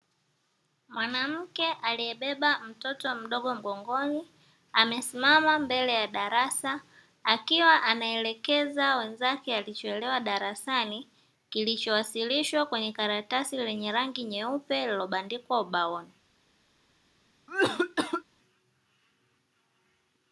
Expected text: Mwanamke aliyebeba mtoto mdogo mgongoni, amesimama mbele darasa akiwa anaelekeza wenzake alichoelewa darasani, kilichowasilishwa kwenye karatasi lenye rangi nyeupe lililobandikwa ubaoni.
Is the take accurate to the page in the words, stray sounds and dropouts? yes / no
no